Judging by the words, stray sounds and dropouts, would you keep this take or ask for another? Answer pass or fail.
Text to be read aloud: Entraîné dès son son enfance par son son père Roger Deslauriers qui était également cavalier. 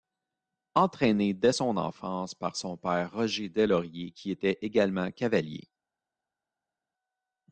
fail